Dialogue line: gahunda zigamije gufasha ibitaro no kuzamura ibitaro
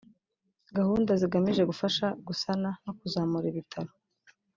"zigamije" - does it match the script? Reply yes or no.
yes